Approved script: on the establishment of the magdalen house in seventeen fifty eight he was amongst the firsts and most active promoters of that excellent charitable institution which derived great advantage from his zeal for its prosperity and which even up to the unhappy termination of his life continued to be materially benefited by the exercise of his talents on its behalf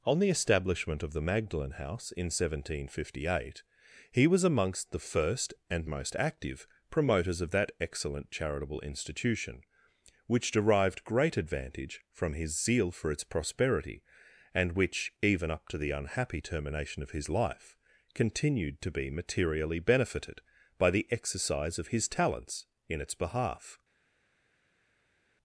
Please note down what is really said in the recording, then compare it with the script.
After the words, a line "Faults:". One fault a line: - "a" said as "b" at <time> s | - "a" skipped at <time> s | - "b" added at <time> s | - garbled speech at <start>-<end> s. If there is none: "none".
on the establishment of the magdalen house in seventeen fifty eight he was amongst the first and most active promoters of that excellent charitable institution which derived great advantage from his zeal for its prosperity and which even up to the unhappy termination of his life continued to be materially benefited by the exercise of his talents in its behalf
Faults:
- "firsts" said as "first" at 5.0 s
- "on" said as "in" at 22.9 s